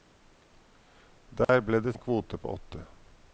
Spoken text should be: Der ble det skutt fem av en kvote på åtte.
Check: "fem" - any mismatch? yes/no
yes